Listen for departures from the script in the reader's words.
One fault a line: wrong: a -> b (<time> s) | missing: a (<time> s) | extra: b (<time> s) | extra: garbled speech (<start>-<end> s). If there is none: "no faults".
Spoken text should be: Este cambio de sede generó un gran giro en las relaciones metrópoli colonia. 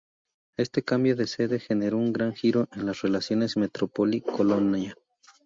no faults